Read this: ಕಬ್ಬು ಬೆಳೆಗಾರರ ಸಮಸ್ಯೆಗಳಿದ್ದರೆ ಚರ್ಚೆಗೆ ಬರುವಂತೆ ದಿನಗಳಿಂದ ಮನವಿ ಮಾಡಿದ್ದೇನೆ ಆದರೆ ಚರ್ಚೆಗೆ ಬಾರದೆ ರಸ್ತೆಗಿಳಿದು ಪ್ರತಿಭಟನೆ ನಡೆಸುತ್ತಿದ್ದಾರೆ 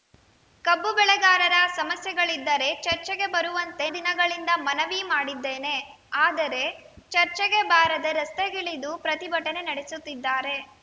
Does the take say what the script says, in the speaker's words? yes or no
yes